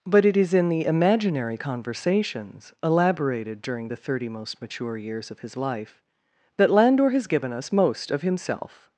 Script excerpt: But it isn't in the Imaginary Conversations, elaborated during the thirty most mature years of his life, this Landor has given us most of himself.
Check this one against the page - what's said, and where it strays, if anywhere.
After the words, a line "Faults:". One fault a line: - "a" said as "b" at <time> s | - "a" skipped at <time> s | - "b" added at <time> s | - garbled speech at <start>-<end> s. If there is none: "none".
But it is in the Imaginary Conversations, elaborated during the thirty most mature years of his life, that Landor has given us most of himself.
Faults:
- "isn't" said as "is" at 0.3 s
- "this" said as "that" at 6.5 s